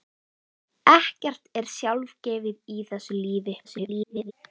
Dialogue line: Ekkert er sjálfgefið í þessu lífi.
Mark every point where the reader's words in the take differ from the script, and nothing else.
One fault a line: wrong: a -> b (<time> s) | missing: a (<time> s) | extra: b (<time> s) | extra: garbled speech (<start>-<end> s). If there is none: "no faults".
extra: garbled speech (3.6-4.3 s)